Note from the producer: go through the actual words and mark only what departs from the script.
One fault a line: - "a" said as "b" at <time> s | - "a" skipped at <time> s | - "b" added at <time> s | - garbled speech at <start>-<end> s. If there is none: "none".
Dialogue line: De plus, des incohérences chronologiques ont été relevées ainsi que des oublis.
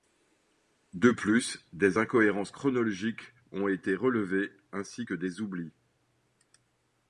none